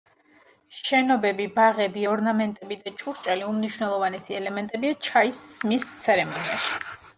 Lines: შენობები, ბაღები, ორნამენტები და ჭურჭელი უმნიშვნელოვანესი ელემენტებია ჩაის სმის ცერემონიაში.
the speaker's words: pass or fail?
pass